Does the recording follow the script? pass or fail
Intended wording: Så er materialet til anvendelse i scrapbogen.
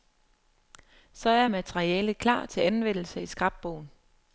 fail